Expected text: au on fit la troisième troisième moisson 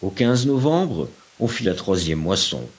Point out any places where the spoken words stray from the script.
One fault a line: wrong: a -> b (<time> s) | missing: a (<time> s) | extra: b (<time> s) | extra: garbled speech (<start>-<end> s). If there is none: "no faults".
extra: novembre (0.5 s)
missing: troisième (2.2 s)